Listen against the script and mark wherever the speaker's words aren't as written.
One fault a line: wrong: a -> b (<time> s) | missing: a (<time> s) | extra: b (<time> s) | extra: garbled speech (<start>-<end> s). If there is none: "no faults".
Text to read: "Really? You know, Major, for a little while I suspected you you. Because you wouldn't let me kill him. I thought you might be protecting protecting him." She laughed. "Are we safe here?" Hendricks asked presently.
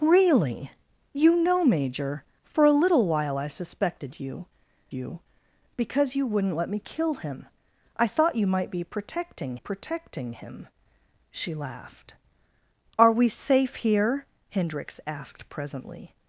no faults